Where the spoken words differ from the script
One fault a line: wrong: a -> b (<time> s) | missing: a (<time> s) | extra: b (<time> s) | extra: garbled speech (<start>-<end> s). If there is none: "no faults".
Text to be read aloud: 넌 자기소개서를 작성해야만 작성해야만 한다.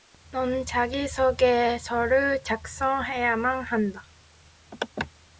missing: 작성해야만 (3.6 s)